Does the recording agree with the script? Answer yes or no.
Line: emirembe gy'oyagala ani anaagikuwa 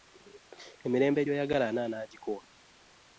yes